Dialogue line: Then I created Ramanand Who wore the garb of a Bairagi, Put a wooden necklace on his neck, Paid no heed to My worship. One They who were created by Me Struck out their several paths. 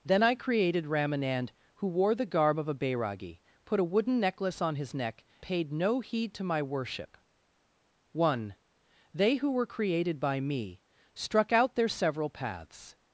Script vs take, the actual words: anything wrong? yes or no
no